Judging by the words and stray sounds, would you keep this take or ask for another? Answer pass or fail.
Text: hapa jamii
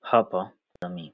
fail